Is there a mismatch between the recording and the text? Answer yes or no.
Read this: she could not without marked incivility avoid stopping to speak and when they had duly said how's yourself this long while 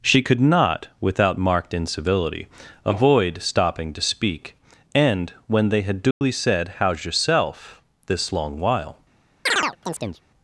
no